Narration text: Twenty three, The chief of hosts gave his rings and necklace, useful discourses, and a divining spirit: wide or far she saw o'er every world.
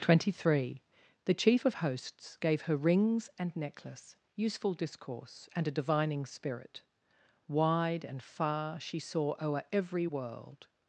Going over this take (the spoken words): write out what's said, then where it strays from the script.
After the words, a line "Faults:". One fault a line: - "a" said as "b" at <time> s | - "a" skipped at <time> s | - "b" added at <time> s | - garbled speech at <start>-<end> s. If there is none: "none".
Twenty three, The chief of hosts gave her rings and necklace, useful discourse, and a divining spirit: wide and far she saw o'er every world.
Faults:
- "his" said as "her" at 2.6 s
- "discourses" said as "discourse" at 4.7 s
- "or" said as "and" at 8.1 s